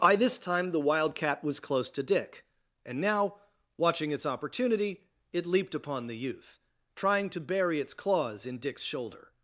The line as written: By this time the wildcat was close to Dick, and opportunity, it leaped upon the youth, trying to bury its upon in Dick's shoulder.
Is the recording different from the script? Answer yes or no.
yes